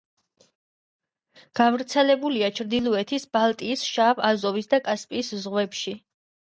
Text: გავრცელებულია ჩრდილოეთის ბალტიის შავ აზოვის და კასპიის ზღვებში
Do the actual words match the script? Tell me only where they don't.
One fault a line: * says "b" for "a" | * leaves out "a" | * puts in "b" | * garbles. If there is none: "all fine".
all fine